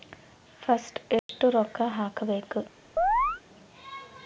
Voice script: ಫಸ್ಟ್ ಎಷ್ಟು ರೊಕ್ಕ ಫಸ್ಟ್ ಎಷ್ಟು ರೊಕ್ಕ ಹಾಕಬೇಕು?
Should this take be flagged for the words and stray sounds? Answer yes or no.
yes